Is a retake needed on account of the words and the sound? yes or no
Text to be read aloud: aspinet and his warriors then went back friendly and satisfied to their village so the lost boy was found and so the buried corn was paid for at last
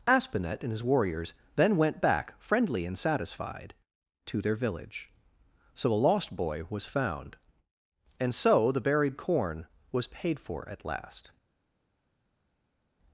yes